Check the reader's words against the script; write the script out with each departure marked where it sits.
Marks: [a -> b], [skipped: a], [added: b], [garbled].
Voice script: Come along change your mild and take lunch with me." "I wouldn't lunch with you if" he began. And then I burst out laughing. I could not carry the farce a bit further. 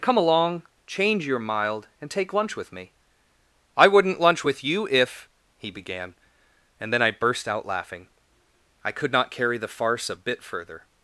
Come along change your mild and take lunch with me." "I wouldn't lunch with you if" he began. And then I burst out laughing. I could not carry the farce a bit further.